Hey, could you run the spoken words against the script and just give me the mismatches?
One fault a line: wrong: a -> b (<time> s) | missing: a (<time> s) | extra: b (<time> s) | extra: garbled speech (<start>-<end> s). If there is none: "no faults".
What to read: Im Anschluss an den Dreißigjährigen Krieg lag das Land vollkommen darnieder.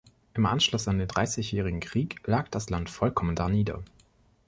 no faults